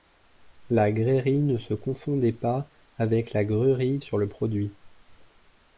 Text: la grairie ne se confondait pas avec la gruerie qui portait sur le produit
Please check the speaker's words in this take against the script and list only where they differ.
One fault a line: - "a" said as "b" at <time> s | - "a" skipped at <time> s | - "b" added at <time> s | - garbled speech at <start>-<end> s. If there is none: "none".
- "qui portait" skipped at 4.0 s